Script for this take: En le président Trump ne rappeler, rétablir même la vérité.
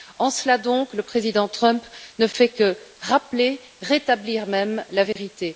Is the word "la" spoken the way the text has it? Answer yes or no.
yes